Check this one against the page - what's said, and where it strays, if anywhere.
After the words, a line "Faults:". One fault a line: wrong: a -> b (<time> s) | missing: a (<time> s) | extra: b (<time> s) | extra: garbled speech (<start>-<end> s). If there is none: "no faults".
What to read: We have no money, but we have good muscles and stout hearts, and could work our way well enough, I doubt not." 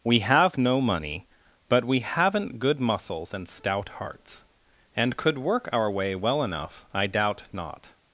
We have no money, but we haven't good muscles and stout hearts, and could work our way well enough, I doubt not."
Faults:
wrong: have -> haven't (2.0 s)